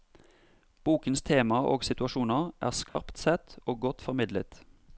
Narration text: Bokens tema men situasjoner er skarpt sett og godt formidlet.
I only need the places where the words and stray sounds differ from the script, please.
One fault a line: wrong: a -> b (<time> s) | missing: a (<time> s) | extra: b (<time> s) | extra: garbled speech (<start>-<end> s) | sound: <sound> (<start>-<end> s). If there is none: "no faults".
wrong: men -> og (1.7 s)
sound: dropout (2.9-3.0 s)